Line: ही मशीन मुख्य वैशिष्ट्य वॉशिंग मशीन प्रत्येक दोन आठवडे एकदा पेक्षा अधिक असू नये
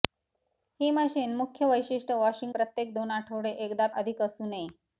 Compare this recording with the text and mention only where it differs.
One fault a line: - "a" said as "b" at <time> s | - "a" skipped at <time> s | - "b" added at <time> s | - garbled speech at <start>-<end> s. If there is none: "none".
- "मशीन" skipped at 2.5 s
- "पेक्षा" skipped at 3.9 s